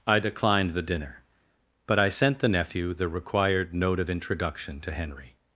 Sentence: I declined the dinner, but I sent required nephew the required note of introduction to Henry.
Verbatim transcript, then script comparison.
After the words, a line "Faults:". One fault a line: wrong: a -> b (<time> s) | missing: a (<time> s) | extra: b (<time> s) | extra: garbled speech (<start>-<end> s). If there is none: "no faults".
I declined the dinner, but I sent the nephew the required note of introduction to Henry.
Faults:
wrong: required -> the (2.4 s)